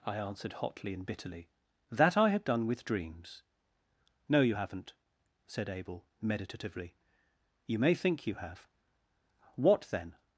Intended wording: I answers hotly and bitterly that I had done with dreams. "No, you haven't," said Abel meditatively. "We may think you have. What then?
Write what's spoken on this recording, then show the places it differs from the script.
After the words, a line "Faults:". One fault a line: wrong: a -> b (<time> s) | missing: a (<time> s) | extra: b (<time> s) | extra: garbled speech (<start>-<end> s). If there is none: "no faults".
I answered hotly and bitterly that I had done with dreams. "No, you haven't," said Abel meditatively. "You may think you have. What then?
Faults:
wrong: answers -> answered (0.2 s)
wrong: We -> You (7.7 s)